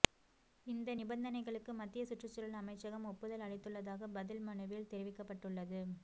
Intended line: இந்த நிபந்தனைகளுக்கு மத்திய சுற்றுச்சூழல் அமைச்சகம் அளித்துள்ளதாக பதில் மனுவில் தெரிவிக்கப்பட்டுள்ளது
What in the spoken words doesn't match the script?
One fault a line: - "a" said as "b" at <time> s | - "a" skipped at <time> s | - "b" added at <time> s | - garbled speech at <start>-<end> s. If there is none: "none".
- "ஒப்புதல்" added at 3.1 s